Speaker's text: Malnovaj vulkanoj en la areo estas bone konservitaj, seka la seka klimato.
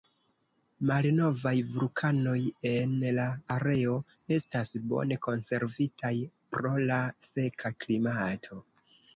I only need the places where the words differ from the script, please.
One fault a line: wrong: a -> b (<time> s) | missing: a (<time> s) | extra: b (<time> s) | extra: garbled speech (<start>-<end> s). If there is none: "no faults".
wrong: seka -> pro (6.6 s)